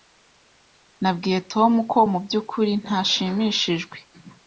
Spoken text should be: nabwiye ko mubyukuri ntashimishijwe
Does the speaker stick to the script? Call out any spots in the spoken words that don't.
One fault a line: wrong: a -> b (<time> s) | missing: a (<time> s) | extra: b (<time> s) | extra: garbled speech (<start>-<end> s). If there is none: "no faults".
extra: tom (1.5 s)